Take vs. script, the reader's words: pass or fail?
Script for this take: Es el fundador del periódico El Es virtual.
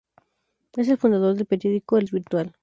pass